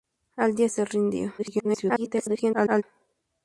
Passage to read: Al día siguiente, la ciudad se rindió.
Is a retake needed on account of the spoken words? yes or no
yes